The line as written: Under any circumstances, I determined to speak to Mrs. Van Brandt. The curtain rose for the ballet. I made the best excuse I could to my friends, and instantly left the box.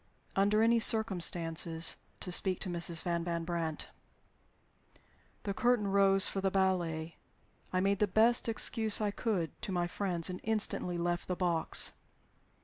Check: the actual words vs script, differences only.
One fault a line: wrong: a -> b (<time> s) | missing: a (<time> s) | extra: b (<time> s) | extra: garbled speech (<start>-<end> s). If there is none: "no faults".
missing: I determined (2.0 s)
extra: van (3.2 s)